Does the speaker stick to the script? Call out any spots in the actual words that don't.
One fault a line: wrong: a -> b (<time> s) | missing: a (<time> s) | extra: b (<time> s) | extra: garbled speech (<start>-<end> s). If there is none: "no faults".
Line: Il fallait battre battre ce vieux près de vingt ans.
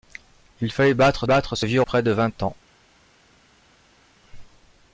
no faults